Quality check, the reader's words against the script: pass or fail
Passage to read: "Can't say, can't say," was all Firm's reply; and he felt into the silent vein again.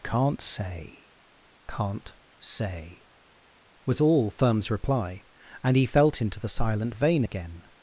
pass